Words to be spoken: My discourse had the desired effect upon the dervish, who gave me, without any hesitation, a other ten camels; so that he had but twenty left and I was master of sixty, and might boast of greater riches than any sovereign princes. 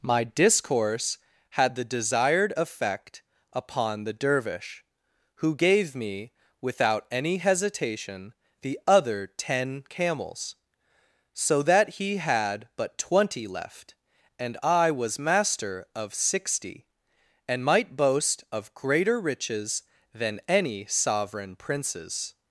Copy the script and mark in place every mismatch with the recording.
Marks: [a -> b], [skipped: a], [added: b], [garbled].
My discourse had the desired effect upon the dervish, who gave me, without any hesitation, [a -> the] other ten camels; so that he had but twenty left and I was master of sixty, and might boast of greater riches than any sovereign princes.